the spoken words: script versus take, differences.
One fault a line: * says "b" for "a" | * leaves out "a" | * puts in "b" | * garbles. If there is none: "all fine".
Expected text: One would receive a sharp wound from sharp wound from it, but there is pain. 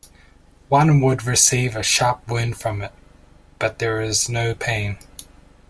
* leaves out "sharp wound from"
* puts in "no"